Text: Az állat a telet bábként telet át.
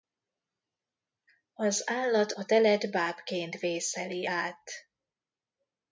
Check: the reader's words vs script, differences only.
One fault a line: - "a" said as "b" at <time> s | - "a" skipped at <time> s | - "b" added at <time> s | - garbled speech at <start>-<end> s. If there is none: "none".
- "telet" said as "vészeli" at 3.6 s